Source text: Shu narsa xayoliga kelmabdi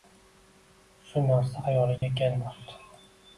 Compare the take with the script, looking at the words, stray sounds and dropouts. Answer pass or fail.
fail